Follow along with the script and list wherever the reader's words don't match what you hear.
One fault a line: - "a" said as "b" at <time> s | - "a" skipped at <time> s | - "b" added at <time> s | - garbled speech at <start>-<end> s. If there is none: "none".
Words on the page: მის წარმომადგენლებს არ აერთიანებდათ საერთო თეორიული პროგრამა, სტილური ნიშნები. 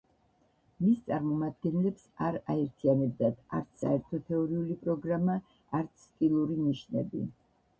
- "არც" added at 3.6 s
- "არც" added at 5.8 s